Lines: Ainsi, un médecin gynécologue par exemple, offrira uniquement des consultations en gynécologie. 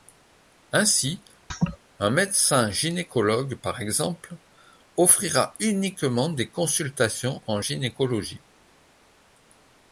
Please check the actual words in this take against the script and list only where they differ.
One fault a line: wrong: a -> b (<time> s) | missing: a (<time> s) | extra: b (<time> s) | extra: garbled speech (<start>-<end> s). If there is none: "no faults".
no faults